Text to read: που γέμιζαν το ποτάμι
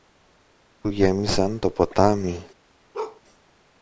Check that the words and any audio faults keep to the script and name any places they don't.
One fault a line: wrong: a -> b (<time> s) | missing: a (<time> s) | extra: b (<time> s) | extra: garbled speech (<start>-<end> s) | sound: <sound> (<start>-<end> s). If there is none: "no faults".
sound: bark (2.9-3.2 s)